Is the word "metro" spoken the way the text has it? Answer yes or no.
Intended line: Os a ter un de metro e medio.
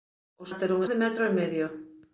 yes